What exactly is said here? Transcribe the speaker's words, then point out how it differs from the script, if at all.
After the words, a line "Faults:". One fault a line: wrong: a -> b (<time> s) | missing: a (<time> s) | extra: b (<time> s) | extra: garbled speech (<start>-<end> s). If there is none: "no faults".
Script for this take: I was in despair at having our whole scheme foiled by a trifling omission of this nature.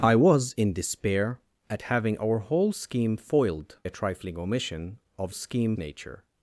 I was in despair at having our whole scheme foiled a trifling omission of scheme nature.
Faults:
missing: by (3.8 s)
wrong: this -> scheme (5.3 s)